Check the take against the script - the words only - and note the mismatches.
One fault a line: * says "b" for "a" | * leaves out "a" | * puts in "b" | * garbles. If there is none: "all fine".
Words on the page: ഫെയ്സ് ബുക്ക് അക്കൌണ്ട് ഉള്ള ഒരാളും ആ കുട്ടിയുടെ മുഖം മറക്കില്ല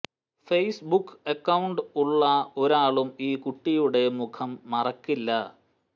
* says "ഈ" for "ആ"